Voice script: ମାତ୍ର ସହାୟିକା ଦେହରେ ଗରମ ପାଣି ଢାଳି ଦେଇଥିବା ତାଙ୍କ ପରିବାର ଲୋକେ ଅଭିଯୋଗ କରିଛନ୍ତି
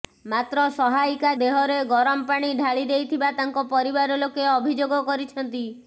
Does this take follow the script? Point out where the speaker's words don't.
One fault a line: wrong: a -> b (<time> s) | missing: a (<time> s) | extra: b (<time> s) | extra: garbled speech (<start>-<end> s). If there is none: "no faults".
no faults